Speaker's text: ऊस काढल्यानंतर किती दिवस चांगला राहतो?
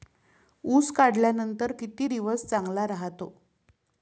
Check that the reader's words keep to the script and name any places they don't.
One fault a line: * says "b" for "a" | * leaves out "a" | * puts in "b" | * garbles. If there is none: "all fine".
all fine